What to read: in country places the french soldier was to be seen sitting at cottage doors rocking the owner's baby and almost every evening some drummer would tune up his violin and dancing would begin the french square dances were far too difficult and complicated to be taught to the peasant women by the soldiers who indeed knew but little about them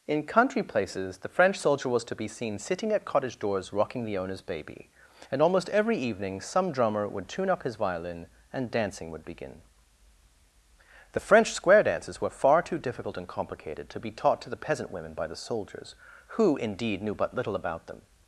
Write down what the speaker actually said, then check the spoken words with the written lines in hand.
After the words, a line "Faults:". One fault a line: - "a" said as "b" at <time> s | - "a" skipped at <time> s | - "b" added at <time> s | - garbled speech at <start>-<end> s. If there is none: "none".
in country places the french soldier was to be seen sitting at cottage doors rocking the owner's baby and almost every evening some drummer would tune up his violin and dancing would begin the french square dances were far too difficult and complicated to be taught to the peasant women by the soldiers who indeed knew but little about them
Faults:
none